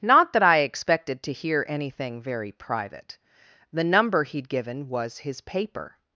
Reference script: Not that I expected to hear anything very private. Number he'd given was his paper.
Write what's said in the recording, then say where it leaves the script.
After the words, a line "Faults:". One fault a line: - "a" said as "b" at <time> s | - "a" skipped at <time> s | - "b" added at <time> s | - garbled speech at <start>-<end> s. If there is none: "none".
Not that I expected to hear anything very private. The number he'd given was his paper.
Faults:
- "The" added at 3.7 s